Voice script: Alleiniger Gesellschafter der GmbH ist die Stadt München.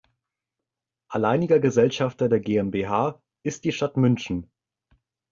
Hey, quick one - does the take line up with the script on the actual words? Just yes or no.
yes